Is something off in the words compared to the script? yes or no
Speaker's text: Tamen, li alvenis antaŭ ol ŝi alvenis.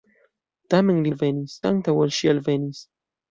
no